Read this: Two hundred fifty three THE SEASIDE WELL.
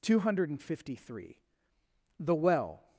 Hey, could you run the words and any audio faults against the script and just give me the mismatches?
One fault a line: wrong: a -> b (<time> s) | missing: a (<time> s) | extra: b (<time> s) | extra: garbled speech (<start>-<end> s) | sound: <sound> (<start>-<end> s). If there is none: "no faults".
missing: SEASIDE (2.4 s)